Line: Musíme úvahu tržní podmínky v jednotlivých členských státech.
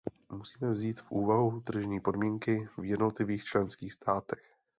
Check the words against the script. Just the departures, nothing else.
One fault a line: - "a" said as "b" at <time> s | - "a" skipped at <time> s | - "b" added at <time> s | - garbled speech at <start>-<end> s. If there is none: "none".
- "vzít v" added at 0.7 s